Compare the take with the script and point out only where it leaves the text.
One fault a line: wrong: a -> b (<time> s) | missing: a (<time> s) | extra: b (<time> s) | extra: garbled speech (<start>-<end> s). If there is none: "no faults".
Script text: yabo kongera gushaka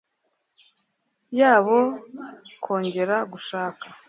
no faults